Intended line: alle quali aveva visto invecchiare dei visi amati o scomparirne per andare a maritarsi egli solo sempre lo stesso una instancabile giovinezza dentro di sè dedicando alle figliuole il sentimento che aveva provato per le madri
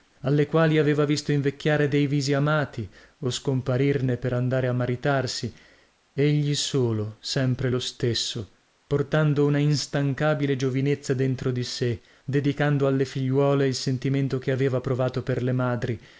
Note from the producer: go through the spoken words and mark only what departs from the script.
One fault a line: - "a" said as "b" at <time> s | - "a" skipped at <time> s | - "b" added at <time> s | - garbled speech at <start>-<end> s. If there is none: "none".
- "portando" added at 8.9 s